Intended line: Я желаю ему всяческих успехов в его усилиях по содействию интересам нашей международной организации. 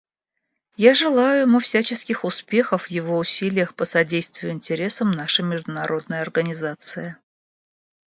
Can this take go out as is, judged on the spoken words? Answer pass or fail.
pass